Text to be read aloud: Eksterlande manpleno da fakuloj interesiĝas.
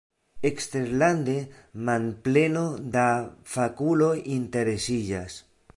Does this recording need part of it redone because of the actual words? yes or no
no